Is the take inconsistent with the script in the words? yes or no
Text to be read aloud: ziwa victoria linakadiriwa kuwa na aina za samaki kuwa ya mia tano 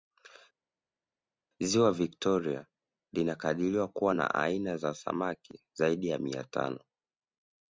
yes